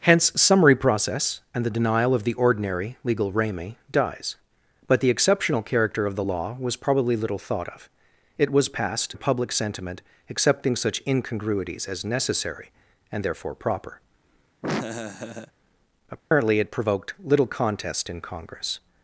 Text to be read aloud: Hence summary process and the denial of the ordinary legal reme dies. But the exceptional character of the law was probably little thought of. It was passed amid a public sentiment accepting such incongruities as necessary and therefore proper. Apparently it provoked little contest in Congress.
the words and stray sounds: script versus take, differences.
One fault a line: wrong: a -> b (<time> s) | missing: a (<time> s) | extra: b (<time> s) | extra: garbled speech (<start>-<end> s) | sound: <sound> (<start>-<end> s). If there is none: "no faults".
missing: amid (9.2 s)
sound: laugh (14.6-15.5 s)
sound: dropout (16.2-16.3 s)